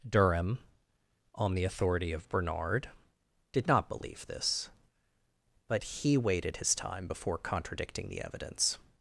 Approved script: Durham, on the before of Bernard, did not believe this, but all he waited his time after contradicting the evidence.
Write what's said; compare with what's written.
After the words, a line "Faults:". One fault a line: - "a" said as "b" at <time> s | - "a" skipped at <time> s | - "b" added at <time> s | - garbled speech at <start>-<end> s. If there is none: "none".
Durham, on the authority of Bernard, did not believe this, but he waited his time before contradicting the evidence.
Faults:
- "before" said as "authority" at 1.6 s
- "all" skipped at 5.8 s
- "after" said as "before" at 7.0 s